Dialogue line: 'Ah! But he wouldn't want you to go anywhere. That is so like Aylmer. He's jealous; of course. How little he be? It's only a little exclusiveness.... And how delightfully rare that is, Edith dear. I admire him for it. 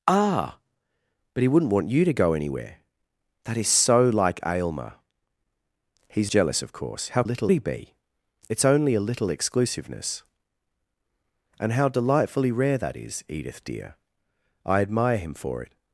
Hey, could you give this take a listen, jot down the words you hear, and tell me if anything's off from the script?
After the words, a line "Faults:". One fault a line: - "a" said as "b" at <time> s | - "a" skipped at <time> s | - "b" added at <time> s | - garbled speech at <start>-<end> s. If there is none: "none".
'Ah! But he wouldn't want you to go anywhere. That is so like Aylmer. He's jealous; of course. How little he be? It's only a little exclusiveness.... And how delightfully rare that is, Edith dear. I admire him for it.
Faults:
none